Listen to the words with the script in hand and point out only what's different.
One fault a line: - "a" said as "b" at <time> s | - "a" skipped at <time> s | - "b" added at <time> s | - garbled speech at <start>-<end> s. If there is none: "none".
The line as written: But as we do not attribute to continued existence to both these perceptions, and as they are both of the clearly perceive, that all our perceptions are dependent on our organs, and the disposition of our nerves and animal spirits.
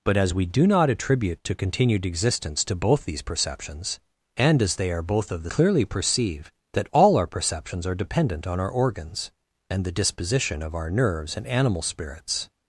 none